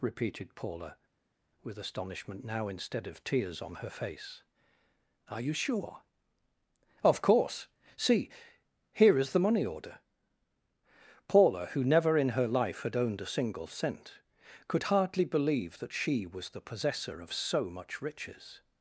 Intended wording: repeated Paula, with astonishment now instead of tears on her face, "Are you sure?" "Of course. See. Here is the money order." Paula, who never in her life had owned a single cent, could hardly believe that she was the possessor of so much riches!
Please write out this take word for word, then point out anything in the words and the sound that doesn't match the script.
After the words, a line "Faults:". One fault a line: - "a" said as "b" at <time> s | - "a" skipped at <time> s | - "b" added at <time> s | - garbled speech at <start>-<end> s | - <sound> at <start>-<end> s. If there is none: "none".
repeated Paula, with astonishment now instead of tears on her face, "Are you sure?" "Of course. See. Here is the money order." Paula, who never in her life had owned a single cent, could hardly believe that she was the possessor of so much riches!
Faults:
none